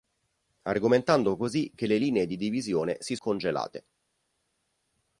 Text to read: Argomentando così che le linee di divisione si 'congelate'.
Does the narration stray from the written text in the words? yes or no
no